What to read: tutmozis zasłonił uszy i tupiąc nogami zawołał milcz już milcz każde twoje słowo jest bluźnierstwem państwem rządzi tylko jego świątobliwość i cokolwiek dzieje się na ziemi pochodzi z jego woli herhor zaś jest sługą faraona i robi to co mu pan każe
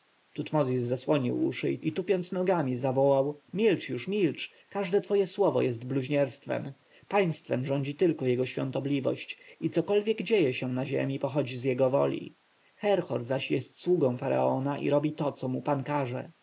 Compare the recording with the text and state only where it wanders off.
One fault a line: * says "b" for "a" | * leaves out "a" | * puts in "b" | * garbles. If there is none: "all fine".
all fine